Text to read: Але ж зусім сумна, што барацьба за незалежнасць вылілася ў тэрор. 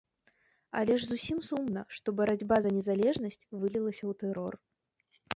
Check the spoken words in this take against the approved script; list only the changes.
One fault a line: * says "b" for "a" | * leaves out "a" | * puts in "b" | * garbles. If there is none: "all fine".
all fine